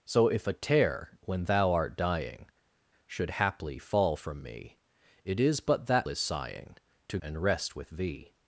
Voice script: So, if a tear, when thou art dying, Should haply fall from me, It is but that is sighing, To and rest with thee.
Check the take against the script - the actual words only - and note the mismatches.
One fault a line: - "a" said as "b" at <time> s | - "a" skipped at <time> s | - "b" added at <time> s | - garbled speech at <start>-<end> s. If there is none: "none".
none